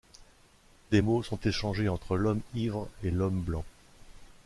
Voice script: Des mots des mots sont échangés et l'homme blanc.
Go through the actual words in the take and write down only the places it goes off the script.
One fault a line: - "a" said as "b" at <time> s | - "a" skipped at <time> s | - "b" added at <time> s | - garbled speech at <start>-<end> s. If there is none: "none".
- "des mots sont échangés" said as "sont échangés entre l'homme ivre" at 1.2 s